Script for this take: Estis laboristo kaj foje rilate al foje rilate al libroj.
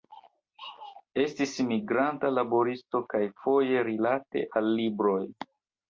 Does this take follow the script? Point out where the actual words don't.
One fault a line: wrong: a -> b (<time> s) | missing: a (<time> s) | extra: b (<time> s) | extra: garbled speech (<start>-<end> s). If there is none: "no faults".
extra: migranta (1.7 s)
missing: foje rilate al (4.7 s)